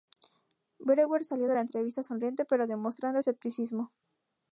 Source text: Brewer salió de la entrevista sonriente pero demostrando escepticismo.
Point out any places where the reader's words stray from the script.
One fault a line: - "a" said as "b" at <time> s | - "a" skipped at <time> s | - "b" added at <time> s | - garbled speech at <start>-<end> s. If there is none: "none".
none